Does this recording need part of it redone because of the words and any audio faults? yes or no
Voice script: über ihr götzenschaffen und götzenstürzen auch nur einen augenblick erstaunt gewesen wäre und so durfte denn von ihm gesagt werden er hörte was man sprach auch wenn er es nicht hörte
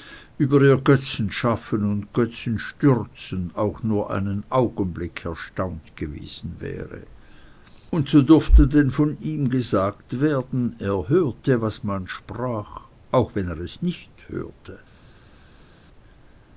no